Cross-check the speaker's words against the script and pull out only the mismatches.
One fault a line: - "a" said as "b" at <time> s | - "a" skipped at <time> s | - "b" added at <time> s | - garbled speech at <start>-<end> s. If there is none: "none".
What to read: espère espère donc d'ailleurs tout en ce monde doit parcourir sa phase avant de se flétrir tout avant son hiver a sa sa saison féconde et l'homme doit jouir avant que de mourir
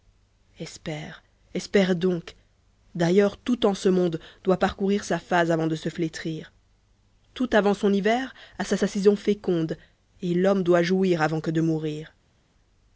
none